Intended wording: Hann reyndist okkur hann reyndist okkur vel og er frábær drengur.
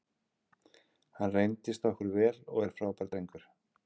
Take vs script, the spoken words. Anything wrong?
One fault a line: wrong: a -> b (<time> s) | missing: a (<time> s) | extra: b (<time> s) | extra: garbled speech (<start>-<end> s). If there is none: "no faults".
missing: hann reyndist okkur (2.1 s)